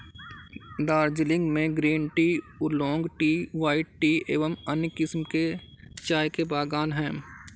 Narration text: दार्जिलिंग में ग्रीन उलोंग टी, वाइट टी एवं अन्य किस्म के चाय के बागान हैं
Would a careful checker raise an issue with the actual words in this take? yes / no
yes